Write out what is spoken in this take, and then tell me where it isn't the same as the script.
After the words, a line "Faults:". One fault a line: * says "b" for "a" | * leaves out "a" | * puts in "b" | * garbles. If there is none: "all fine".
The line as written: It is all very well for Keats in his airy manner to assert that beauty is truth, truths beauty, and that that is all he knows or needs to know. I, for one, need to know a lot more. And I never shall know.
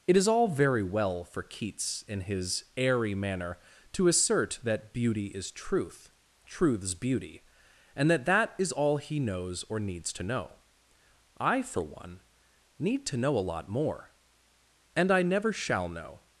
It is all very well for Keats in his airy manner to assert that beauty is truth, truths beauty, and that that is all he knows or needs to know. I, for one, need to know a lot more. And I never shall know.
Faults:
all fine